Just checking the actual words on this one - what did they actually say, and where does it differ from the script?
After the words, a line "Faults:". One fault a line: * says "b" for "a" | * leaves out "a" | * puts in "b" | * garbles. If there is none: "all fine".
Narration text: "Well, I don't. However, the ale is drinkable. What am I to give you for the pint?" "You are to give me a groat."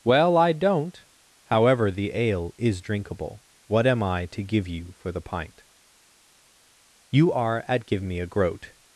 "Well, I don't. However, the ale is drinkable. What am I to give you for the pint?" "You are at give me a groat."
Faults:
* says "at" for "to"